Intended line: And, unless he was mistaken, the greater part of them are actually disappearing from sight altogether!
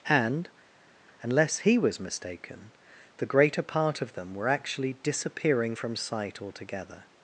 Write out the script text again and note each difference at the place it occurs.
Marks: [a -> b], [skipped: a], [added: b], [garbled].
And, unless he was mistaken, the greater part of them [are -> were] actually disappearing from sight altogether!